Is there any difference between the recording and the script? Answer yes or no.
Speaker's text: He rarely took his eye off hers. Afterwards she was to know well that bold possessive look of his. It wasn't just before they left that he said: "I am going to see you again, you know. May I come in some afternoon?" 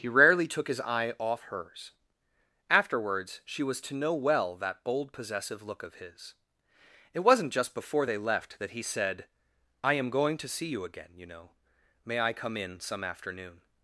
no